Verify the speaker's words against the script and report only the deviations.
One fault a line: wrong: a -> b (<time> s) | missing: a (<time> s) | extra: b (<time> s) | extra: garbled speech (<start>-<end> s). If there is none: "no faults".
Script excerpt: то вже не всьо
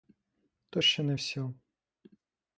wrong: вже -> ще (0.8 s)